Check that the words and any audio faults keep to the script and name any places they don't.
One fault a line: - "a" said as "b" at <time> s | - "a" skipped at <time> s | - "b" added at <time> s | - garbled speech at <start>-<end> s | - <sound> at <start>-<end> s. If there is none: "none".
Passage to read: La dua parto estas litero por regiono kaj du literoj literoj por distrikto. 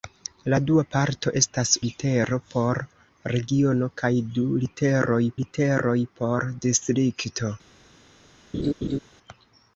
- laugh at 8.5-9.0 s